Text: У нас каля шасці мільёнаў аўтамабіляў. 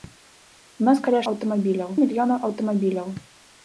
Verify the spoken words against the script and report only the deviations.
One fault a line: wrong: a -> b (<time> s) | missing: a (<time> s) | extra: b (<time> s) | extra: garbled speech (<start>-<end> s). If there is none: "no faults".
wrong: шасці -> аўтамабіляў (1.3 s)